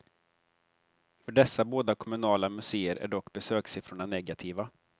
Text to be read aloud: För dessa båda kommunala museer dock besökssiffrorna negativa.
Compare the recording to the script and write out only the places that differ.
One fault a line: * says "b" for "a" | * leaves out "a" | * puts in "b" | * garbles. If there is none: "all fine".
* puts in "är"